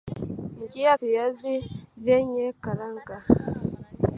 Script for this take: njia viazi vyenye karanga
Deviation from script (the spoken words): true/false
false